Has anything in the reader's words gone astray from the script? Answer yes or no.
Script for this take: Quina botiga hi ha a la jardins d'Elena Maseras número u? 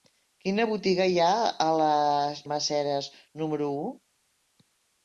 yes